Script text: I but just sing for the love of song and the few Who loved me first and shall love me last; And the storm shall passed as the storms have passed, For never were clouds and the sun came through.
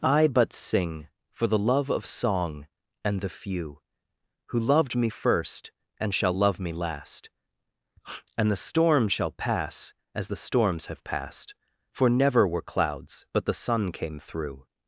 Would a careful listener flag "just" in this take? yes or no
yes